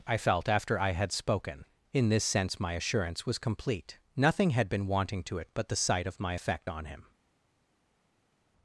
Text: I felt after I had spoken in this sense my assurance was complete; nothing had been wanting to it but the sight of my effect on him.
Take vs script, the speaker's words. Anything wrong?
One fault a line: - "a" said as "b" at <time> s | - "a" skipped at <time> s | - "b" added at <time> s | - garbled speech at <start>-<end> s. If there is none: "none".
none